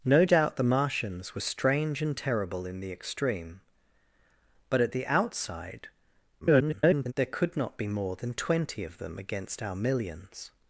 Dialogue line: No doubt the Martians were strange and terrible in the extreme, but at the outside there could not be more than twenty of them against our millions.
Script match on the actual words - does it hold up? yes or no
no